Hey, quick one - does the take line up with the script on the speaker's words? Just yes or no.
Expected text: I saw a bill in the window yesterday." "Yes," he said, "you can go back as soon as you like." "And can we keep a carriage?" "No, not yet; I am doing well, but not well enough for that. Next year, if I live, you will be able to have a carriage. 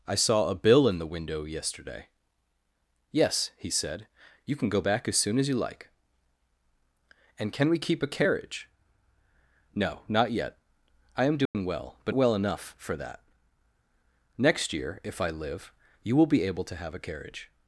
no